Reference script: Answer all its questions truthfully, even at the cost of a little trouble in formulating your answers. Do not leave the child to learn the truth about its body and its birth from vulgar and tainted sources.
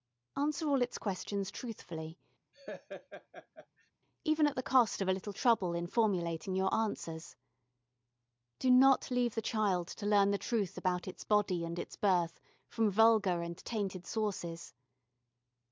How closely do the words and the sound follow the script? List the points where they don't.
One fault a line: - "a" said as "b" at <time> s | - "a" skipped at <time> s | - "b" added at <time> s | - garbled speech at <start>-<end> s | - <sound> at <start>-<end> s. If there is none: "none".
- laugh at 2.5-3.9 s